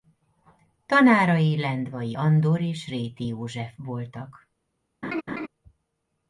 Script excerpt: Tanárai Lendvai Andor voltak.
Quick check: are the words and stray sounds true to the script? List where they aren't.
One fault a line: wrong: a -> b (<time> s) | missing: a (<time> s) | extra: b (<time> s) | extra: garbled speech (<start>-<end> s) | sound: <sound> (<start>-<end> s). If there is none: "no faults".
extra: és Réti József (2.6 s)
sound: laugh (5.0-5.5 s)